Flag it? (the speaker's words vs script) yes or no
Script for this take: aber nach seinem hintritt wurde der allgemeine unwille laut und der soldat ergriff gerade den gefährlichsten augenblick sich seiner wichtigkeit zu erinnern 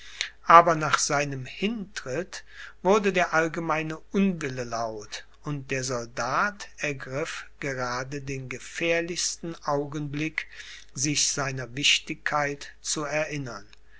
no